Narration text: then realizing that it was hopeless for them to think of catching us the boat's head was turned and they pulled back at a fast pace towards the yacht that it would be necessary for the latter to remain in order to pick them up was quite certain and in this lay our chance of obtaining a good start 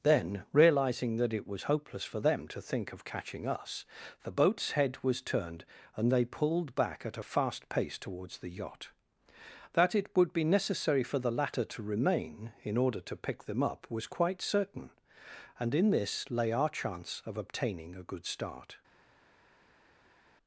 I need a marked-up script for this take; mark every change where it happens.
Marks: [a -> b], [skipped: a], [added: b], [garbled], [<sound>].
then realizing that it was hopeless for them to think of catching us the boat's head was turned and they pulled back at a fast pace towards the yacht that it would be necessary for the latter to remain in order to pick them up was quite certain and in this lay our chance of obtaining a good start